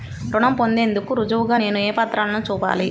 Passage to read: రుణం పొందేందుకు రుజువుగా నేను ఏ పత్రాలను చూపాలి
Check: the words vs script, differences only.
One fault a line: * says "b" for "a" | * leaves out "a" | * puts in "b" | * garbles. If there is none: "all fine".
all fine